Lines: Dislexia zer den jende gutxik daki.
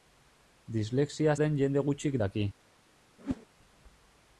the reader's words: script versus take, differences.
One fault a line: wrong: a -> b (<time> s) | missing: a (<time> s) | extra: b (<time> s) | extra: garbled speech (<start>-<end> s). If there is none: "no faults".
missing: zer (1.4 s)